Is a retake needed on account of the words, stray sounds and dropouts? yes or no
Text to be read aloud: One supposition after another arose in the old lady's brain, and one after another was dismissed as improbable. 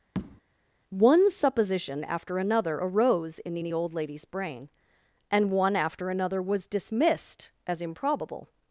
yes